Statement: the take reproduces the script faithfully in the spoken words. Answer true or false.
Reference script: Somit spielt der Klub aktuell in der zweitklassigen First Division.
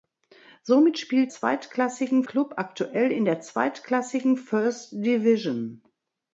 false